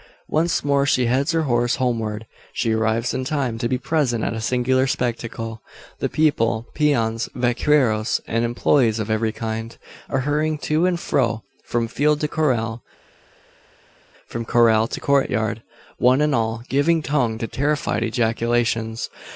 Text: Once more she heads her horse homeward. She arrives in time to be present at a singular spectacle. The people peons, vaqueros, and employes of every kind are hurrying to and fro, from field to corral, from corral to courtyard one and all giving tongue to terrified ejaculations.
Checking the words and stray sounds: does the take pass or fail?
pass